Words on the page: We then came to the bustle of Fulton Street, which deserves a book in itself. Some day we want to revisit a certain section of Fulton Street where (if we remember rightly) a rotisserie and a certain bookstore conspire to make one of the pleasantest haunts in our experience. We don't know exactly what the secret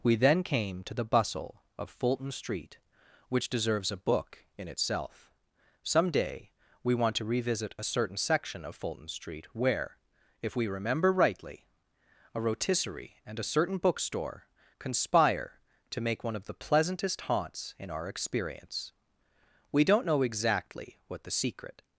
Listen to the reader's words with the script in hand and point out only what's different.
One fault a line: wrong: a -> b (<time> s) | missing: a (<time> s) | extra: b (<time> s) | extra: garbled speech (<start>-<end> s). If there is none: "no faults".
no faults